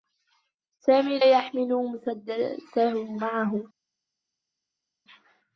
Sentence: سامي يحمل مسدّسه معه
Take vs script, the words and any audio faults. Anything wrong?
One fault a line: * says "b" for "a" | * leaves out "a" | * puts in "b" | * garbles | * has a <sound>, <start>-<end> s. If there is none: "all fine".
all fine